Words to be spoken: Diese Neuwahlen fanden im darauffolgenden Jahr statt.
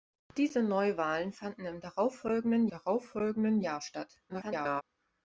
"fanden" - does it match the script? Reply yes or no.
yes